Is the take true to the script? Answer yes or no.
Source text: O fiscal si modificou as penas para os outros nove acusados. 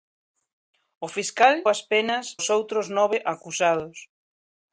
no